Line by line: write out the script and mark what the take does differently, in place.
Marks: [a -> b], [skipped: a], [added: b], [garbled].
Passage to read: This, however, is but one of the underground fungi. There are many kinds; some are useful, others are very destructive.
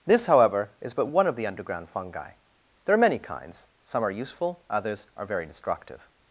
This, however, is but one of the underground fungi. There are many kinds; some are useful, others are very destructive.